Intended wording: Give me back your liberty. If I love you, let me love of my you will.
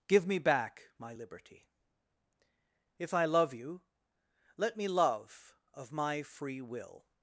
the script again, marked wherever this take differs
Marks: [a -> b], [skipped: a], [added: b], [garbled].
Give me back [your -> my] liberty. If I love you, let me love of my [you -> free] will.